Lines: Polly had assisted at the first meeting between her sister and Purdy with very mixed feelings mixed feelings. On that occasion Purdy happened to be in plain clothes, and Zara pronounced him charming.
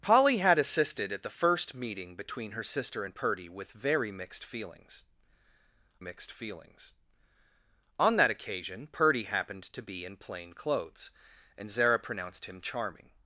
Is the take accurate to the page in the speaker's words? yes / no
yes